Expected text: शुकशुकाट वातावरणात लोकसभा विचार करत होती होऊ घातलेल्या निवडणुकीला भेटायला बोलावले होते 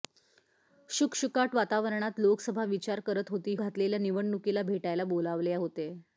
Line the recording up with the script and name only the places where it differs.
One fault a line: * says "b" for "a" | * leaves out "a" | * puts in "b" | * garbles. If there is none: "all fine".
* leaves out "होऊ"